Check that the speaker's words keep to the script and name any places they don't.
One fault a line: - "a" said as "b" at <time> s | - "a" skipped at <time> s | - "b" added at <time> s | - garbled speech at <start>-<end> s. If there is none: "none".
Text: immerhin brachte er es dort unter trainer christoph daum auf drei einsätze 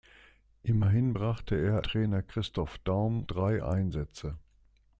- "es dort unter" skipped at 1.9 s
- "auf" skipped at 3.3 s